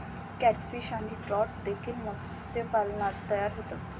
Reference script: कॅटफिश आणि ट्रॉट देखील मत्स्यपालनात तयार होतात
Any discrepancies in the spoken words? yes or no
no